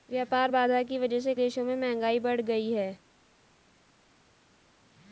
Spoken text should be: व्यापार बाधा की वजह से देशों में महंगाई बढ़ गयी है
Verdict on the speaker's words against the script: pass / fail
pass